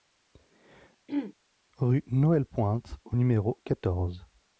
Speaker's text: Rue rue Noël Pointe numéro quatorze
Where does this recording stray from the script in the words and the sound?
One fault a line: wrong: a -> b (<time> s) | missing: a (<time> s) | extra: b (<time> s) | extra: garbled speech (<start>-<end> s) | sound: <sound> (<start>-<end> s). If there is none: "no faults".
sound: throat clearing (1.1-1.3 s)
missing: rue (2.0 s)
extra: au (3.0 s)